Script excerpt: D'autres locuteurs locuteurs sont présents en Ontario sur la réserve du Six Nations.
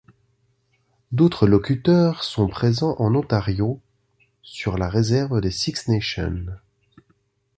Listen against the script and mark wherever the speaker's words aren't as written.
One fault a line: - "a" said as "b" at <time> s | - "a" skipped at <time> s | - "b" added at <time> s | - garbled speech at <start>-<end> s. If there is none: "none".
- "locuteurs" skipped at 2.2 s
- "du" said as "des" at 5.4 s